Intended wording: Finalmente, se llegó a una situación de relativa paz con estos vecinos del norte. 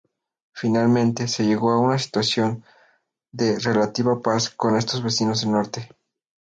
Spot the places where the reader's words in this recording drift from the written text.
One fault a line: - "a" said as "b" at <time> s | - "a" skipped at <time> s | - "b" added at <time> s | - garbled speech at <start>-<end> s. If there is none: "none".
none